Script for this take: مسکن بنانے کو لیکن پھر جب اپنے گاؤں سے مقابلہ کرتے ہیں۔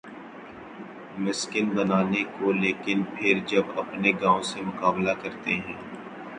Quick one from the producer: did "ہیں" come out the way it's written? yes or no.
yes